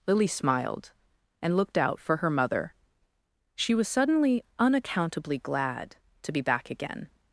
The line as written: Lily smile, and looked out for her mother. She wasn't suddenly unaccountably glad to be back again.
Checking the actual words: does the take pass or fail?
fail